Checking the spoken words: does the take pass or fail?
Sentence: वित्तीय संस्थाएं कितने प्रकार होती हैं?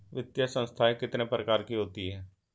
fail